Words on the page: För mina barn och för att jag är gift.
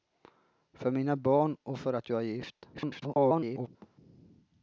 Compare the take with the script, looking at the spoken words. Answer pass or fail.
fail